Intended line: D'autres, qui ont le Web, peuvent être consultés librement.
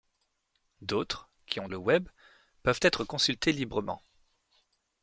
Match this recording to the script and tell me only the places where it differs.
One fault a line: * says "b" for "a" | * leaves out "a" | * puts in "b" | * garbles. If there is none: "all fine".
all fine